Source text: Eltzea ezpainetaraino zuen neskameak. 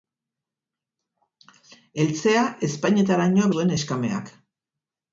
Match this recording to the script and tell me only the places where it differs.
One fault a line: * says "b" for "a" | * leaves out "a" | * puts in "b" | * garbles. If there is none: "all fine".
all fine